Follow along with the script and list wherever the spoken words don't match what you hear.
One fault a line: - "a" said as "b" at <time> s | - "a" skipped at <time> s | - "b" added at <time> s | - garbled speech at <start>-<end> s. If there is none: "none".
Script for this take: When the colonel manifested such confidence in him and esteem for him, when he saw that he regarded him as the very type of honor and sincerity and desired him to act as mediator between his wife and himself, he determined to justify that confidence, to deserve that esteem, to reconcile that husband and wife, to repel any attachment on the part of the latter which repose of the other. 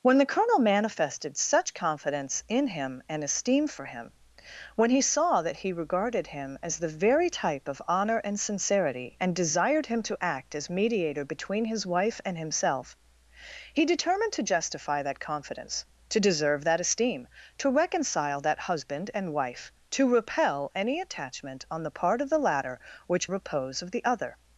none